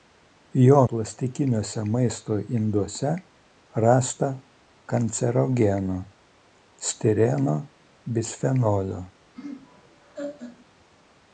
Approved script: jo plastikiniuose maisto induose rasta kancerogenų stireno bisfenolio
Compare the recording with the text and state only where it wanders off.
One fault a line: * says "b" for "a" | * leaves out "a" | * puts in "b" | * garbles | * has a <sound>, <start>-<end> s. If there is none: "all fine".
* has a laugh, 9.4-10.7 s